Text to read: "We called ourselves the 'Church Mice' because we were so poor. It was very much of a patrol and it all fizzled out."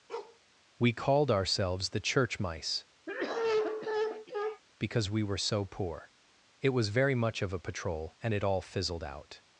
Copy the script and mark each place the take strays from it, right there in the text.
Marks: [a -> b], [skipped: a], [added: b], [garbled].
"We called ourselves the 'Church Mice' because we were so poor. It was very much of a patrol and it all fizzled out."